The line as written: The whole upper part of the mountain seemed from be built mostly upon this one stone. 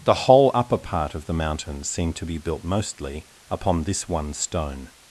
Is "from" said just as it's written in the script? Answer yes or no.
no